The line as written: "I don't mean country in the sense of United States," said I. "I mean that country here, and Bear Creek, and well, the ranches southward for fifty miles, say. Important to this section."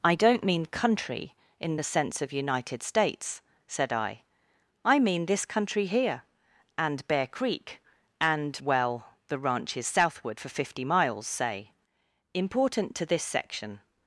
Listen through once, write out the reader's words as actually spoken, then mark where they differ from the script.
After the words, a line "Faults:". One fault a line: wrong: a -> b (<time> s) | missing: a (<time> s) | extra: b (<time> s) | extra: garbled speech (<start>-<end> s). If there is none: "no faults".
"I don't mean country in the sense of United States," said I. "I mean this country here, and Bear Creek, and well, the ranches southward for fifty miles, say. Important to this section."
Faults:
wrong: that -> this (5.2 s)